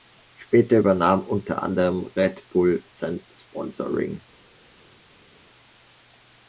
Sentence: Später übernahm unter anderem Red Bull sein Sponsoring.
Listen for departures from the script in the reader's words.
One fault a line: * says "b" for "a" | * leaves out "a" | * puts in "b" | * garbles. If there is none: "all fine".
all fine